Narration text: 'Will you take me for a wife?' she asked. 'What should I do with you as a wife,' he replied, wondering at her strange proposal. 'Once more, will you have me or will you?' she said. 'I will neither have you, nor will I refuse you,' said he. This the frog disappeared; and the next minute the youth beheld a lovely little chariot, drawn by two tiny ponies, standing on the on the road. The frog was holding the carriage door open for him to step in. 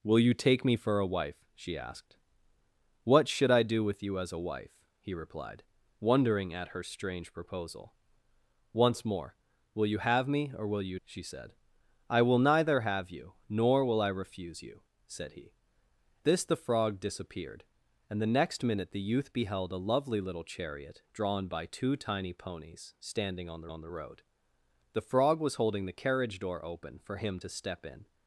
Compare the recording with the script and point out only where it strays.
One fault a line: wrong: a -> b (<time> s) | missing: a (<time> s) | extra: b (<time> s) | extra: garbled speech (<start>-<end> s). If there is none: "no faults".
no faults